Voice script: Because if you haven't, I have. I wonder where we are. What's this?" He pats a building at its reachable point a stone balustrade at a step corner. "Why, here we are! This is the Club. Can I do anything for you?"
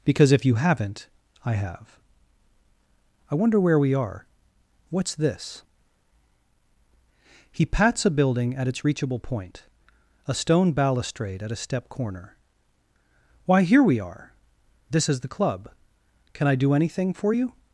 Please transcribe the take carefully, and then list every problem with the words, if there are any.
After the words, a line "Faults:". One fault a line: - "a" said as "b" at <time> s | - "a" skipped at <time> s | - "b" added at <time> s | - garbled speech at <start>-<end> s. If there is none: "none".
Because if you haven't, I have. I wonder where we are. What's this?" He pats a building at its reachable point a stone balustrade at a step corner. "Why, here we are! This is the Club. Can I do anything for you?"
Faults:
none